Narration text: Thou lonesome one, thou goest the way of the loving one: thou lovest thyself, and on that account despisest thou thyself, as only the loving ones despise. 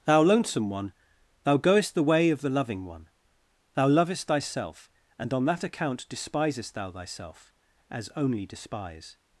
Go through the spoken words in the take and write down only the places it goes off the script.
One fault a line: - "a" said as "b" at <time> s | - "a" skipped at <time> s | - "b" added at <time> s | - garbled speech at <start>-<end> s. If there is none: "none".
- "the loving ones" skipped at 8.5 s